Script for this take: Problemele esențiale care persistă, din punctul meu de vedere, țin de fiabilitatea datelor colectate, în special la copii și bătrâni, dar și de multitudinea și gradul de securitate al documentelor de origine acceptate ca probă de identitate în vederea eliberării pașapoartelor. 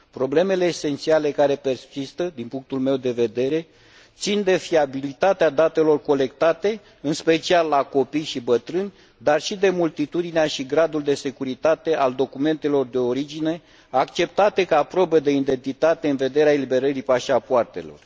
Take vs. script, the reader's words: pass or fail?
pass